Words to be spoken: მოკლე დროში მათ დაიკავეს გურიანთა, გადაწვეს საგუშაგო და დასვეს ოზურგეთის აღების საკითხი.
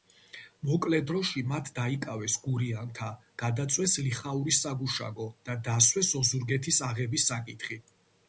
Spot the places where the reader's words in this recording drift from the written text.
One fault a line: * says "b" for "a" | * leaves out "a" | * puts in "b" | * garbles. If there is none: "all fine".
* puts in "ლიხაურის"